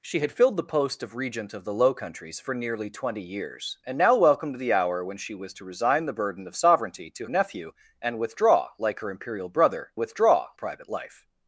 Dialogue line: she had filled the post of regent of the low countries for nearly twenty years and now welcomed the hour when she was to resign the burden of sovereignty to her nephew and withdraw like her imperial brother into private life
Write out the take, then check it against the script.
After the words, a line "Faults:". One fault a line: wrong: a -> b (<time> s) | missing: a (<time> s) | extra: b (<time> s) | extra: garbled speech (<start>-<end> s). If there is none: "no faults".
she had filled the post of regent of the low countries for nearly twenty years and now welcomed the hour when she was to resign the burden of sovereignty to nephew and withdraw like her imperial brother withdraw private life
Faults:
missing: her (7.3 s)
wrong: into -> withdraw (10.0 s)